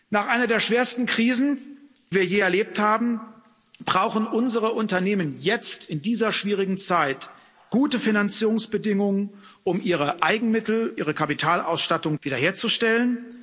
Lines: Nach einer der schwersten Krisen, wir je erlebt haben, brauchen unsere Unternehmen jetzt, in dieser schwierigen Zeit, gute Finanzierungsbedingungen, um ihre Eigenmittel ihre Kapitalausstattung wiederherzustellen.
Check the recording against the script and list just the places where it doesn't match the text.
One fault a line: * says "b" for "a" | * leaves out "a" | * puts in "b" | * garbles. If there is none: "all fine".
all fine